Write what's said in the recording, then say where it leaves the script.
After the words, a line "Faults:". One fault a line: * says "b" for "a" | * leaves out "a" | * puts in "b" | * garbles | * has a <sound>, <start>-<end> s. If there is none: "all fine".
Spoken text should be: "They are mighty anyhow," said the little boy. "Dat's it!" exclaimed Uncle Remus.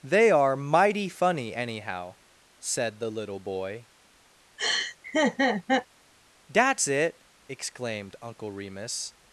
"They are mighty funny, anyhow," said the little boy. "Dat's it!" exclaimed Uncle Remus.
Faults:
* puts in "funny"
* has a laugh, 4.6-5.9 s